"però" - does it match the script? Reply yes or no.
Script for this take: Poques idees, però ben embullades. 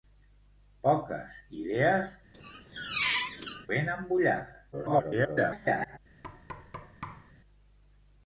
no